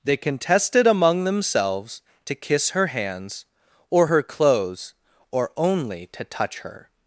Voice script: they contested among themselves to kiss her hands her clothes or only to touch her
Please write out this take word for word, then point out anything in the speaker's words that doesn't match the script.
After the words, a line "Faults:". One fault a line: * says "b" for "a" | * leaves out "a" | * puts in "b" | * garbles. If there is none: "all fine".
they contested among themselves to kiss her hands or her clothes or only to touch her
Faults:
* puts in "or"